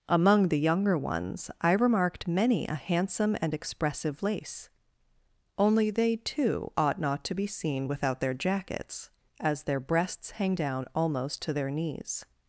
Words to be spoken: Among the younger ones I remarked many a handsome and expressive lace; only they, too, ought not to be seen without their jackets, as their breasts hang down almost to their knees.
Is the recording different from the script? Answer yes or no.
no